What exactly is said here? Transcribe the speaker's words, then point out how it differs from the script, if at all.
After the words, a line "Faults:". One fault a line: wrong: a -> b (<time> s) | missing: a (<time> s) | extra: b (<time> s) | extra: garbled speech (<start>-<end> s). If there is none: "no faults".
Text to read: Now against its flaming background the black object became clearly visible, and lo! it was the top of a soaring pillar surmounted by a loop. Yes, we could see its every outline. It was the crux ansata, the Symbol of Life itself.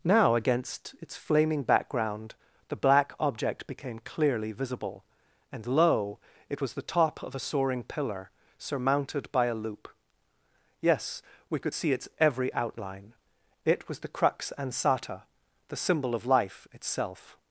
Now against its flaming background the black object became clearly visible, and lo! it was the top of a soaring pillar surmounted by a loop. Yes, we could see its every outline. It was the crux ansata, the Symbol of Life itself.
Faults:
no faults